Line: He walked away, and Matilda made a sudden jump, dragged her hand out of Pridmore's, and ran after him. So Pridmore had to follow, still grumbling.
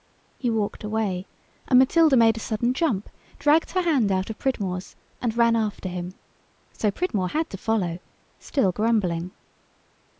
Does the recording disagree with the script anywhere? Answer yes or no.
no